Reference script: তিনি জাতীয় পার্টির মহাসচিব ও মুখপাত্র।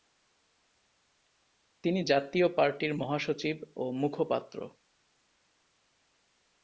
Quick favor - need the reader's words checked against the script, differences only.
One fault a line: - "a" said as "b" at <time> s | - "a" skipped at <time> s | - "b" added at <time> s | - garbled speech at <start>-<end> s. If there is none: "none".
none